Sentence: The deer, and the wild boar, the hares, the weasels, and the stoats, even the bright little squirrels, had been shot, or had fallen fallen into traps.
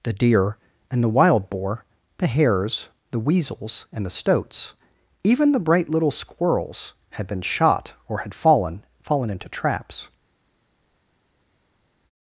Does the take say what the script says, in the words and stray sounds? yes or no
yes